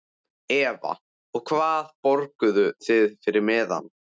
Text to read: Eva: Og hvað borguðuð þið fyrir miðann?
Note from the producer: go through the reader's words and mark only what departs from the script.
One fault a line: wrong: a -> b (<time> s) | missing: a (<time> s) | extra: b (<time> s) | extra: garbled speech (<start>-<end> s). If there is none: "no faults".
no faults